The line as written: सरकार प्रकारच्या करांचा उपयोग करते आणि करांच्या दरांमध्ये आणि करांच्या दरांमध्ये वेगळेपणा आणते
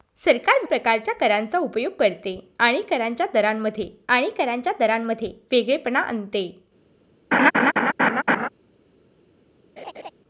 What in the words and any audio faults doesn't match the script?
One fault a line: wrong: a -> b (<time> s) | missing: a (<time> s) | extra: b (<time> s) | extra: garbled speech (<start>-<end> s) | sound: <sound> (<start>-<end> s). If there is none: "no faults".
sound: laugh (7.3-8.5 s)
sound: laugh (9.8-10.1 s)